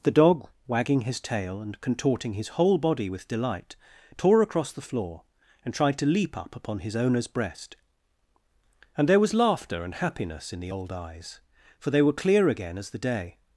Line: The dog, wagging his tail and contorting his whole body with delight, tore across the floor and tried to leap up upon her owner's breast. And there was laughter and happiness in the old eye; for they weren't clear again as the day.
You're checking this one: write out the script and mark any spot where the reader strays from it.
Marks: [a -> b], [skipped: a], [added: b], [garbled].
The dog, wagging his tail and contorting his whole body with delight, tore across the floor and tried to leap up upon [her -> his] owner's breast. And there was laughter and happiness in the old [eye; -> eyes] for they [weren't -> were] clear again as the day.